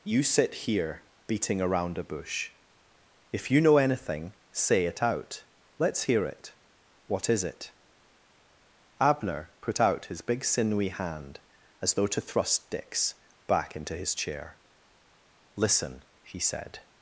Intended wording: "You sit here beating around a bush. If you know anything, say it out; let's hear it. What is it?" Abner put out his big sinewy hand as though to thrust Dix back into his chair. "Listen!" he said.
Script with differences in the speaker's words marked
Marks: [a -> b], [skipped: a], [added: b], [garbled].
"You sit here beating around a bush. If you know anything, say it out; let's hear it. What is it?" Abner put out his big sinewy hand as though to thrust Dix back into his chair. "Listen!" he said.